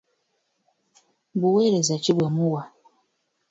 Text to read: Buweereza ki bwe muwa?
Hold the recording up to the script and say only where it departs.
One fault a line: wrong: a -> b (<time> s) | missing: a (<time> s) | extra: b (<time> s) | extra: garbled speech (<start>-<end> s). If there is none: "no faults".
no faults